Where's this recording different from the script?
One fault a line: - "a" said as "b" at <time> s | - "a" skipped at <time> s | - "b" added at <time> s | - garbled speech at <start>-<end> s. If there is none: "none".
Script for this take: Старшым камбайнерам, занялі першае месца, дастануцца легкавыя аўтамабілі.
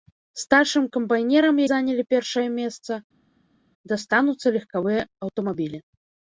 none